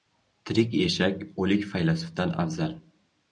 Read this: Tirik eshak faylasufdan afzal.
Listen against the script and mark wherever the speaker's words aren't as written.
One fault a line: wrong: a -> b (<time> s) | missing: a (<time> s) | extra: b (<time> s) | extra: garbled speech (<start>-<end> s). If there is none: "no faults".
extra: o‘lik (1.4 s)